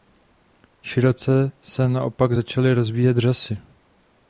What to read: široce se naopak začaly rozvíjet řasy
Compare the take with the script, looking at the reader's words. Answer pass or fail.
pass